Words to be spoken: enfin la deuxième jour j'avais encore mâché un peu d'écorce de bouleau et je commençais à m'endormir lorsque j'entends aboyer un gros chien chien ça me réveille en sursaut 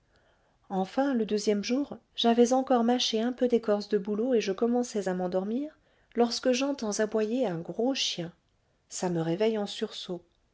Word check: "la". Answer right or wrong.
wrong